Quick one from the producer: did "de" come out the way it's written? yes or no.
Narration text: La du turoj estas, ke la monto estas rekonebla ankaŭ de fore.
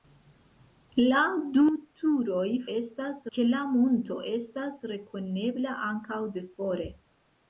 yes